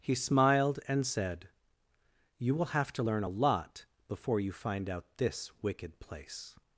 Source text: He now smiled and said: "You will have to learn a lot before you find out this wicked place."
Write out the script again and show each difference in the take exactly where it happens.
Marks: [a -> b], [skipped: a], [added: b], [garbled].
He [skipped: now] smiled and said: "You will have to learn a lot before you find out this wicked place."